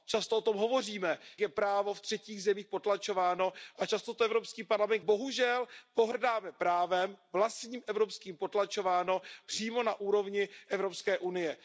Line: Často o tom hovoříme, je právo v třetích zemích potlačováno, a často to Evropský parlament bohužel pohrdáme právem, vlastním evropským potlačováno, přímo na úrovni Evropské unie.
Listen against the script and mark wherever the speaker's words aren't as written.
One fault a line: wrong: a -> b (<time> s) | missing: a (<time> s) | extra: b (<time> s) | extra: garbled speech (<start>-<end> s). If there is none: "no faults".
no faults